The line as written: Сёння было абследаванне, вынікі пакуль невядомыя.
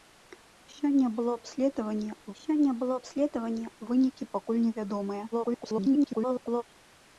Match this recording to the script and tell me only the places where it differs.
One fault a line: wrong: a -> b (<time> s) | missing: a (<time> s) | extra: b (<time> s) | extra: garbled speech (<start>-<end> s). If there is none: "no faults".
extra: сёння было абследаванне (2.4 s)
extra: garbled speech (5.3-6.6 s)